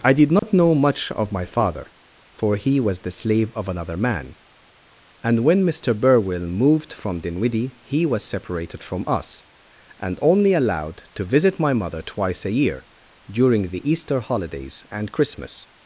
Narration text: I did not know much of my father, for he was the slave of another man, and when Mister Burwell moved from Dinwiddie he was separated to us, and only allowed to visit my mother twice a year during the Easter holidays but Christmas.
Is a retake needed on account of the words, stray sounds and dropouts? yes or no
yes